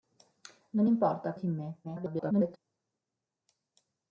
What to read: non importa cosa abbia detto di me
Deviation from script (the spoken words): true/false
true